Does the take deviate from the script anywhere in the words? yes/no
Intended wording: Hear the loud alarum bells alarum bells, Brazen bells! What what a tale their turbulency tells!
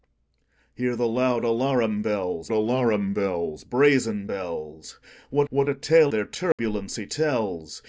no